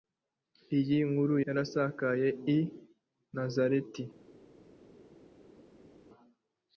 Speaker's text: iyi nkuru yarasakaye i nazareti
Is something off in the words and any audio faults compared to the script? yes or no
no